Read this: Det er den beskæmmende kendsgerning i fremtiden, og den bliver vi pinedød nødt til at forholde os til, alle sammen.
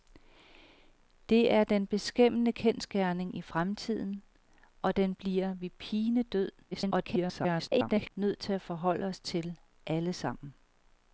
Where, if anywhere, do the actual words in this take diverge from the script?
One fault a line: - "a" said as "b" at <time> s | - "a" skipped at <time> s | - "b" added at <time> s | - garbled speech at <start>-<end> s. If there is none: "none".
- garbled speech at 6.7-8.1 s